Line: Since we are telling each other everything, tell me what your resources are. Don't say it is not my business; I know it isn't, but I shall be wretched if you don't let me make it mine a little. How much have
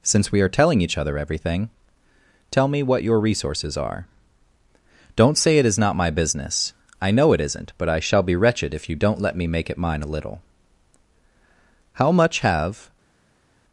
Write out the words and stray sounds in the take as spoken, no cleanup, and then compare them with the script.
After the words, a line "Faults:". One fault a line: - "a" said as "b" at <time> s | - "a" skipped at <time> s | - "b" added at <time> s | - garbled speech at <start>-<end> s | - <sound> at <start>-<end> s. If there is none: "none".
Since we are telling each other everything, tell me what your resources are. Don't say it is not my business; I know it isn't, but I shall be wretched if you don't let me make it mine a little. How much have
Faults:
none